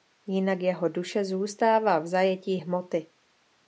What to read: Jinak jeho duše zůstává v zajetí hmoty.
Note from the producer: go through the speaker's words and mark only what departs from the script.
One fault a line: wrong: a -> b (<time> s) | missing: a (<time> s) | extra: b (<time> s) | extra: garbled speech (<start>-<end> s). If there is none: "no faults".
no faults